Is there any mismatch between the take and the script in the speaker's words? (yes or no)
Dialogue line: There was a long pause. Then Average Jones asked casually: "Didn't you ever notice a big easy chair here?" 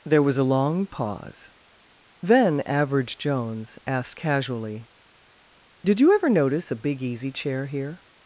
yes